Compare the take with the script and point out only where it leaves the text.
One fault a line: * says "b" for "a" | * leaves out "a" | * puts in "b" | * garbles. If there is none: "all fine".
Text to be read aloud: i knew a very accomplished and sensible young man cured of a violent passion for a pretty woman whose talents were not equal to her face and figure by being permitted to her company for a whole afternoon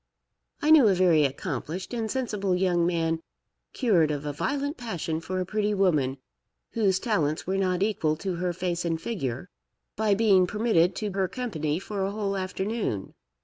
all fine